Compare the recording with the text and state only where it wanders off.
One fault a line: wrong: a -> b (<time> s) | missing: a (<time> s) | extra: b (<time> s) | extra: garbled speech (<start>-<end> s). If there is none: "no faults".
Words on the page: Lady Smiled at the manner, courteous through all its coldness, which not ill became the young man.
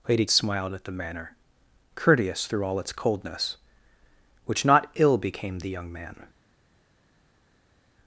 no faults